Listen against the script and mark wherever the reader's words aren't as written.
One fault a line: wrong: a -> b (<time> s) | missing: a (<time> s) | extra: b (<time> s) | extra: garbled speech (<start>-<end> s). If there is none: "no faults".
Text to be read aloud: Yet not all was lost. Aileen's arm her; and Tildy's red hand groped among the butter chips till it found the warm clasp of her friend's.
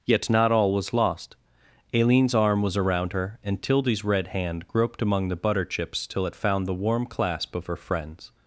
extra: was around (2.6 s)